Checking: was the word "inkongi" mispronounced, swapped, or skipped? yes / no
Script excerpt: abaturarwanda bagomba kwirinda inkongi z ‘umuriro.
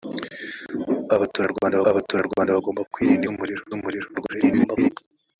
yes